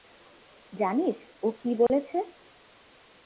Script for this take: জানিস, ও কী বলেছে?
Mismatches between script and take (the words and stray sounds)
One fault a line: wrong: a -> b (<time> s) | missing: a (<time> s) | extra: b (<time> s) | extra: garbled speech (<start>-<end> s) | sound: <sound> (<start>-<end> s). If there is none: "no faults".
sound: dropout (1.9-1.9 s)